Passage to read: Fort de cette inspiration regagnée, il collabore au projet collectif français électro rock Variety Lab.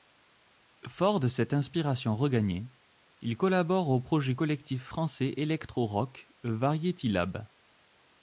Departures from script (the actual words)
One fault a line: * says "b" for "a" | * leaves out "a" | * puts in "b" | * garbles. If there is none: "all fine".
all fine